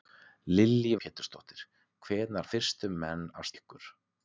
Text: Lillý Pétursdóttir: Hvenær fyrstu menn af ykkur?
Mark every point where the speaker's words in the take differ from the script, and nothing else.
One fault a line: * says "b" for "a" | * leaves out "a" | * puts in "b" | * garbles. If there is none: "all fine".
all fine